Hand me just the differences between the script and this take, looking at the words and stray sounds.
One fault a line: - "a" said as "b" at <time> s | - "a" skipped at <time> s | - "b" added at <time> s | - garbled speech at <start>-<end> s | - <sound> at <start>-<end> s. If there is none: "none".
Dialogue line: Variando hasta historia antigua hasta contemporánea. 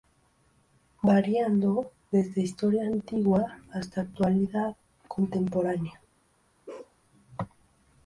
- "hasta" said as "desde" at 2.1 s
- "actualidad" added at 4.0 s
- bark at 6.7-7.0 s